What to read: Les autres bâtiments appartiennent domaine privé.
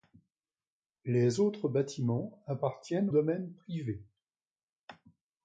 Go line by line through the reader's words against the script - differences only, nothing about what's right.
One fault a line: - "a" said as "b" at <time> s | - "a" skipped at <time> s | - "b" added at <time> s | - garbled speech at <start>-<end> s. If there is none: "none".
none